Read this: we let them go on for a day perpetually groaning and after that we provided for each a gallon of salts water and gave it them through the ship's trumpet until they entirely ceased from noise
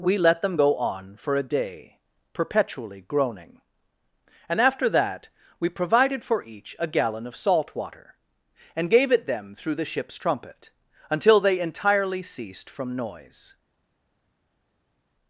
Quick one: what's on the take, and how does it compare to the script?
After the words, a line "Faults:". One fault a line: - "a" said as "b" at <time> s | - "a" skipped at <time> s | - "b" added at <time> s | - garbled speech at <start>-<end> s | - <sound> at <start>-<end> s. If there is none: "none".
we let them go on for a day perpetually groaning and after that we provided for each a gallon of salt water and gave it them through the ship's trumpet until they entirely ceased from noise
Faults:
- "salts" said as "salt" at 7.3 s